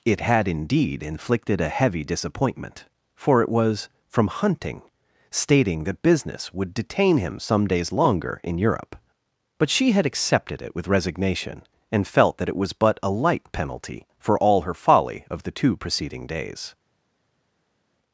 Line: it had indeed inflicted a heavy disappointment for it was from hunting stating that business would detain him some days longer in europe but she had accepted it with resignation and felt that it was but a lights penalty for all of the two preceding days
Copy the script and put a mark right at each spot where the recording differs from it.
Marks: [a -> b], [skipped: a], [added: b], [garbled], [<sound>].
it had indeed inflicted a heavy disappointment for it was from hunting stating that business would detain him some days longer in europe but she had accepted it with resignation and felt that it was but a [lights -> light] penalty for all [added: her folly] of the two preceding days